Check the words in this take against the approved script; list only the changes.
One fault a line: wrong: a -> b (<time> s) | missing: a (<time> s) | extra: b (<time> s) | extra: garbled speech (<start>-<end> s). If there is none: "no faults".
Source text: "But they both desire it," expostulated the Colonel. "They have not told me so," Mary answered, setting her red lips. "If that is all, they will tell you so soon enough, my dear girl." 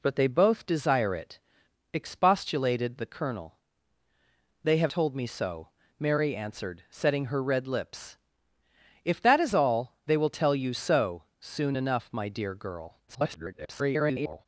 missing: not (4.9 s)
extra: garbled speech (13.1-14.5 s)